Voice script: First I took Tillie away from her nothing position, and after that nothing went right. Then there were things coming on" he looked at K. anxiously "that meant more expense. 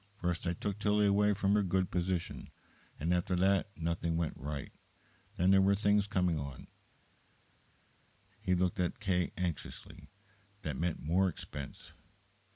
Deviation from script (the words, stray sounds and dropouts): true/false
true